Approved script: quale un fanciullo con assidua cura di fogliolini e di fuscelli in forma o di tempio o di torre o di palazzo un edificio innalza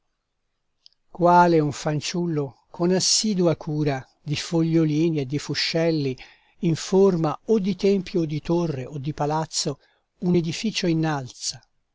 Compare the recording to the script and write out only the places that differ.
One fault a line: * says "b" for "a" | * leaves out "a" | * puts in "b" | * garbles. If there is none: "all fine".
all fine